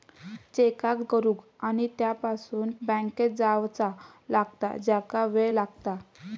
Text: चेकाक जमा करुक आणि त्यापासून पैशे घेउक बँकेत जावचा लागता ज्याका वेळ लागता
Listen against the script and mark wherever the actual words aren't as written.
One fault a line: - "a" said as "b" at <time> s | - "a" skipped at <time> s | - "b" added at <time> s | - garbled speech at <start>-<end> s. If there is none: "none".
- "जमा" skipped at 1.0 s
- "पैशे घेउक" skipped at 2.7 s